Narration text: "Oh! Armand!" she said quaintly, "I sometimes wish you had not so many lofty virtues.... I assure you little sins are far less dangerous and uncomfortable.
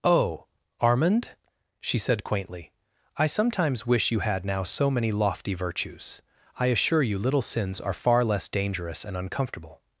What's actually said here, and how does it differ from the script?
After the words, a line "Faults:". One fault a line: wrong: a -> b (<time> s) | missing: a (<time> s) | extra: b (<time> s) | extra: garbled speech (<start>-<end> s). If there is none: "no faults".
"Oh! Armand!" she said quaintly, "I sometimes wish you had now so many lofty virtues.... I assure you little sins are far less dangerous and uncomfortable.
Faults:
wrong: not -> now (4.4 s)